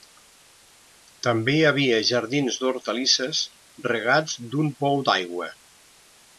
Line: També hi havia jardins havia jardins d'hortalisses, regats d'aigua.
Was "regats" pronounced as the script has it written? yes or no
no